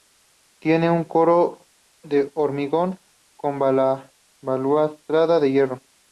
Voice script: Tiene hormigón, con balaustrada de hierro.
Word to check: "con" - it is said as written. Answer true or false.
true